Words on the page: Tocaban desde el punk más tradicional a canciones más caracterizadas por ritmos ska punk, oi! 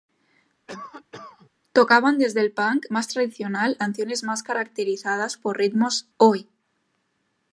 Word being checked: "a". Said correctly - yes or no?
no